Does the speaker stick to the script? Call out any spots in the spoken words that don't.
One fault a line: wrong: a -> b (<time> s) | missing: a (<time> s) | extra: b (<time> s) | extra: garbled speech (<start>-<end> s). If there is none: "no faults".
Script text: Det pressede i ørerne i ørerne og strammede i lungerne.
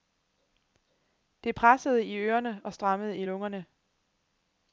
missing: i ørerne (2.6 s)